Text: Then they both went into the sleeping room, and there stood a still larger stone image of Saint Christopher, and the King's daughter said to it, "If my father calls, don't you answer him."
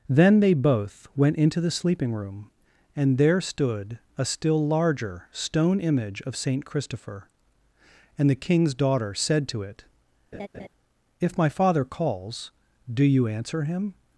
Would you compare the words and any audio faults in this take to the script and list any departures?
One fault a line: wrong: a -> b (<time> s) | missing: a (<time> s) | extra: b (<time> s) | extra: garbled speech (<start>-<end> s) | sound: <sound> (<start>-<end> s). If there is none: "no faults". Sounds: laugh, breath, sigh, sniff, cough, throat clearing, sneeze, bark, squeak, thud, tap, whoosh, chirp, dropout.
sound: laugh (10.3-10.7 s)
wrong: don't -> do (12.9 s)